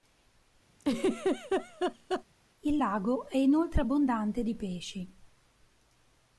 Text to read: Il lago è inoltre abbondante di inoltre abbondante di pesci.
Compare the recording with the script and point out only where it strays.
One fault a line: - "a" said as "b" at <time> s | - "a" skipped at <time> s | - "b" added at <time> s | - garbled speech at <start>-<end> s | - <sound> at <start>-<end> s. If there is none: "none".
- laugh at 0.8-2.2 s
- "inoltre abbondante di" skipped at 4.5 s